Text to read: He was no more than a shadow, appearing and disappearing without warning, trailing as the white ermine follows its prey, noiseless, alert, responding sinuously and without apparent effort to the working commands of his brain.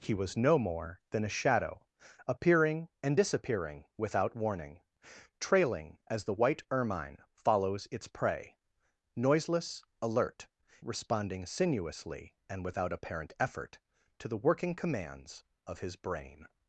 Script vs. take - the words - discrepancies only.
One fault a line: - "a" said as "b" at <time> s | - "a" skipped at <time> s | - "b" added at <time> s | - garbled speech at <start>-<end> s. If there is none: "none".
none